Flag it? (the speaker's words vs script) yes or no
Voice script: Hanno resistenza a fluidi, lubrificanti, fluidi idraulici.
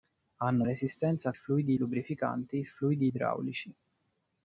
no